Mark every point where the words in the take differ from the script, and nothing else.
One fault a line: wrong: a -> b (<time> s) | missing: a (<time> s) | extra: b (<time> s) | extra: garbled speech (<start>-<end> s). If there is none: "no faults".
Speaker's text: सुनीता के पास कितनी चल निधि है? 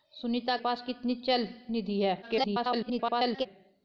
missing: के (0.6 s)
extra: garbled speech (2.2-3.5 s)